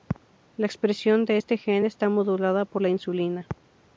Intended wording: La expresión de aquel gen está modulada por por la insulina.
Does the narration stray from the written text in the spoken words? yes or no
yes